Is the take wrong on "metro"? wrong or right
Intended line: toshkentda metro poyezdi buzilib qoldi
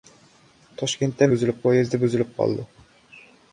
wrong